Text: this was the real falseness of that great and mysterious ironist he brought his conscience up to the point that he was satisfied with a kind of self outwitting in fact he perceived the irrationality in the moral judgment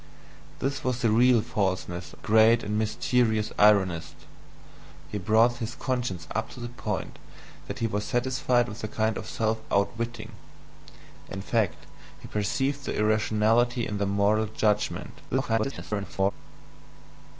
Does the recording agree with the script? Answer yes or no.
no